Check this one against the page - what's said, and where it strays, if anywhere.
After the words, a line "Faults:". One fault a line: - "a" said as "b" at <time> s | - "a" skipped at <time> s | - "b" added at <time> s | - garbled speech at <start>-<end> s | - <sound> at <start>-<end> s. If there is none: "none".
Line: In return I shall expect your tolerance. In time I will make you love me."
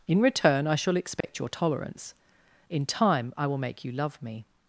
In return I shall expect your tolerance. In time I will make you love me."
Faults:
- dropout at 1.2-1.2 s